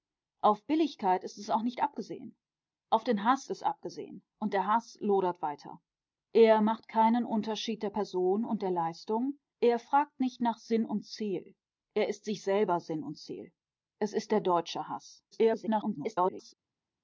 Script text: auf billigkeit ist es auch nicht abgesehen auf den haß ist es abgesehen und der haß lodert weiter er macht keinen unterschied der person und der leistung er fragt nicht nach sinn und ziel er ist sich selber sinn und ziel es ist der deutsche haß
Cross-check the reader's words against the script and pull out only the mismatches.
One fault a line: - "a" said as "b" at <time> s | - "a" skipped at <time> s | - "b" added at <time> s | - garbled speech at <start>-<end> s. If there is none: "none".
- "ist" skipped at 3.5 s
- garbled speech at 15.3-16.5 s